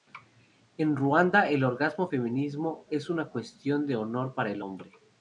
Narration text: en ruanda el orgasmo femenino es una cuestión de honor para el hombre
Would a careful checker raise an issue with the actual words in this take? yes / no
no